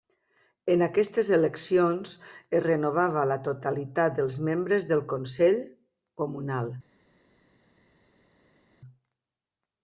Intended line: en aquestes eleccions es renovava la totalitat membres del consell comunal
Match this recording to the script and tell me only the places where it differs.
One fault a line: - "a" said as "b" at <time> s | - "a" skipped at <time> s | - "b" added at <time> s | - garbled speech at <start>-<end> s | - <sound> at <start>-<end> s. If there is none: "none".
- "dels" added at 4.2 s